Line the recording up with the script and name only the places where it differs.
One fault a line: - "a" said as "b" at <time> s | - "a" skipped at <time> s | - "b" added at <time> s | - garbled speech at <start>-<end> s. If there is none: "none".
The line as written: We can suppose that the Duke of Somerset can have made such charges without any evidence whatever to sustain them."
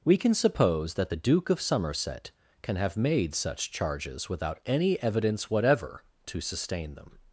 none